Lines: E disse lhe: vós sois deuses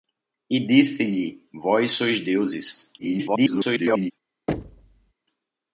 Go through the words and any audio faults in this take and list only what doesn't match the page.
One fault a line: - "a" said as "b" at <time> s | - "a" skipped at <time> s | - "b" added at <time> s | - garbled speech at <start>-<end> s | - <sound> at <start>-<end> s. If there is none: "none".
- garbled speech at 3.0-4.1 s
- thud at 4.5-5.1 s